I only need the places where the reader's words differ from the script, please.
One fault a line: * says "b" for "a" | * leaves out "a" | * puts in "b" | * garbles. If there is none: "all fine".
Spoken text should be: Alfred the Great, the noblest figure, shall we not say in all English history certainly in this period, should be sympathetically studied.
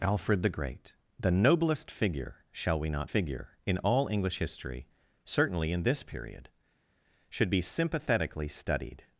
* says "figure" for "say"